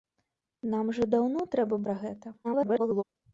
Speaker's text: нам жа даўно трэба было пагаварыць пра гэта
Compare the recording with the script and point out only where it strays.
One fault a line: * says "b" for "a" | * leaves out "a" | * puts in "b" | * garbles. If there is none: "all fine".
* leaves out "было пагаварыць"
* garbles